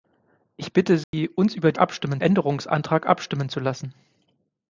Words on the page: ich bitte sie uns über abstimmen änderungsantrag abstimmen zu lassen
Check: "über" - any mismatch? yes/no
no